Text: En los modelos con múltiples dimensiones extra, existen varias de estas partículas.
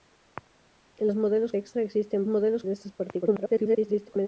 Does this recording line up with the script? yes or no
no